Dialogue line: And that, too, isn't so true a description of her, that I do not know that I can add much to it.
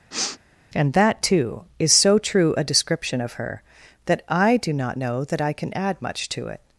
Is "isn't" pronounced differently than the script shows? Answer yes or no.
yes